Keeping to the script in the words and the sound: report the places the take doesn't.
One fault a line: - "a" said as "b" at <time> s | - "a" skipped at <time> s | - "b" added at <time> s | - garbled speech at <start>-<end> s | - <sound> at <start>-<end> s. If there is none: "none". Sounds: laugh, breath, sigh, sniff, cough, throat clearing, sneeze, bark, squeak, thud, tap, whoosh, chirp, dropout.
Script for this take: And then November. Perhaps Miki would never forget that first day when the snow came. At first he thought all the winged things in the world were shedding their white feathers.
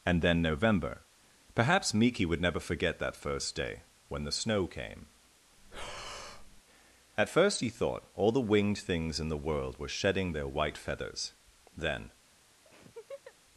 - breath at 5.6-6.6 s
- "Then" added at 11.8 s
- laugh at 12.7-13.4 s